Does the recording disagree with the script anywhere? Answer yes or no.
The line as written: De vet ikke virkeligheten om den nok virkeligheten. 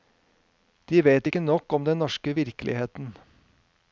yes